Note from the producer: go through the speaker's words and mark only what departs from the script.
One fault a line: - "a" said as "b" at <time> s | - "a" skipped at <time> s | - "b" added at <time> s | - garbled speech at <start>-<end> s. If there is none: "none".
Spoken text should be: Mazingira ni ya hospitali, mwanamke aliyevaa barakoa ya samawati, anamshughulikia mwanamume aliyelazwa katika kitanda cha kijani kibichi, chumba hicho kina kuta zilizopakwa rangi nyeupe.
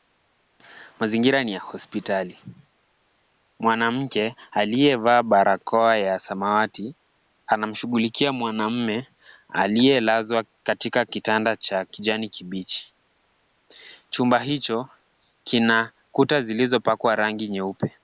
none